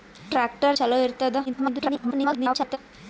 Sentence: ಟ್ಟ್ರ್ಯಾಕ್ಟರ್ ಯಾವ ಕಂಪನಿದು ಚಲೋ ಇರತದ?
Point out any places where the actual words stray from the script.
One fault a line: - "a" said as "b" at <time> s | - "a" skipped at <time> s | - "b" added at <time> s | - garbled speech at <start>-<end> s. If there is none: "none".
- "ಯಾವ ಕಂಪನಿದು" skipped at 0.8 s
- garbled speech at 1.5-2.8 s